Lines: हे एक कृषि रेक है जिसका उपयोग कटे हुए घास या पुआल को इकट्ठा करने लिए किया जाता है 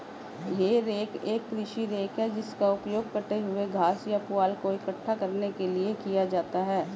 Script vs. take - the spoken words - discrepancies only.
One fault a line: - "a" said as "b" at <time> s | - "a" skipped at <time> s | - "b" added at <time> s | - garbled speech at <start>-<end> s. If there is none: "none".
- "रेक" added at 0.8 s
- "के" added at 5.5 s